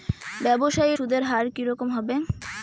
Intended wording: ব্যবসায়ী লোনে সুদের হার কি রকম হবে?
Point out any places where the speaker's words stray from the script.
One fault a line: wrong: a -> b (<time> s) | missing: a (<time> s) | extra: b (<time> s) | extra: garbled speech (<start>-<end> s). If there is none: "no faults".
missing: লোনে (0.9 s)